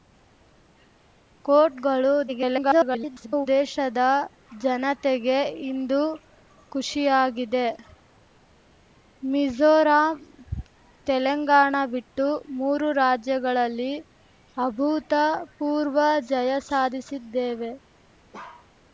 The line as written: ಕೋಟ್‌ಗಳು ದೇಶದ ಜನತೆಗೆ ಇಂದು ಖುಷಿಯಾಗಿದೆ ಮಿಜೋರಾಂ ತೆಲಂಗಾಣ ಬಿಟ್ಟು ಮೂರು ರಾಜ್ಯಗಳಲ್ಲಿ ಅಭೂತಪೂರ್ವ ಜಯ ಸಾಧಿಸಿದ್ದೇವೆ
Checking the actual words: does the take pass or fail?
fail